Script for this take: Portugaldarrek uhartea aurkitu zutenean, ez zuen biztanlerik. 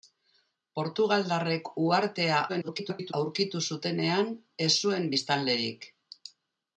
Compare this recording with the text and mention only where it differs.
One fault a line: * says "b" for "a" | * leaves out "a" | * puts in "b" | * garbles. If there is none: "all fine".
* garbles